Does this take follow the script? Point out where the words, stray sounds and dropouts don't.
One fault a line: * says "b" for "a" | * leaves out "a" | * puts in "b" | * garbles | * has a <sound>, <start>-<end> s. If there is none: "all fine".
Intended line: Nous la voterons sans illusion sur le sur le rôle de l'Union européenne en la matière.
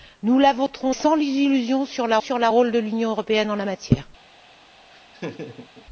* has a laugh, 4.9-5.9 s